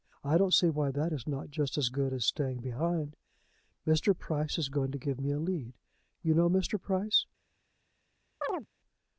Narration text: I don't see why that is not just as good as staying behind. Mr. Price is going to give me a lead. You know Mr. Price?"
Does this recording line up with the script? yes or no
yes